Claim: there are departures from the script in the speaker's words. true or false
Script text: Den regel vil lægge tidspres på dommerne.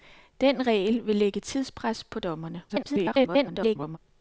true